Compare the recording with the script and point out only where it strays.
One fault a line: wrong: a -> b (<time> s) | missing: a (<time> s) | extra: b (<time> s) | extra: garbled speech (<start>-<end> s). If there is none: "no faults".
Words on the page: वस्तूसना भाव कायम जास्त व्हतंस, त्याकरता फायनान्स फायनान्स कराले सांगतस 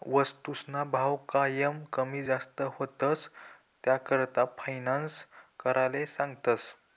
extra: कमी (1.9 s)
missing: फायनान्स (5.2 s)